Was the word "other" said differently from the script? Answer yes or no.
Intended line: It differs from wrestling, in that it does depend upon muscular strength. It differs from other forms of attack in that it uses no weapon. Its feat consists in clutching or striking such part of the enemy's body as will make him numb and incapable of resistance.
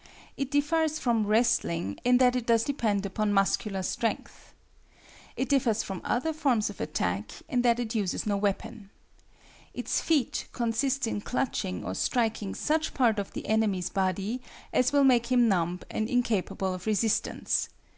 no